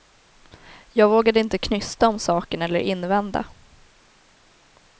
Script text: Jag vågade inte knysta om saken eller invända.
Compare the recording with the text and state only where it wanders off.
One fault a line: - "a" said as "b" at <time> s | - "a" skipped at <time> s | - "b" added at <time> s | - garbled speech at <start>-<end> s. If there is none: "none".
none